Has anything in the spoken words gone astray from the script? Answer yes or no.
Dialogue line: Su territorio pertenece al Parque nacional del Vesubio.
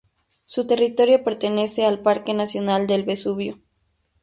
no